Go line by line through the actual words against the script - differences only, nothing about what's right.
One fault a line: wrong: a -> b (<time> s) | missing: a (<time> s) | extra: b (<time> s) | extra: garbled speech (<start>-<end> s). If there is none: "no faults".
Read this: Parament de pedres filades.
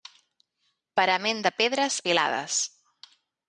no faults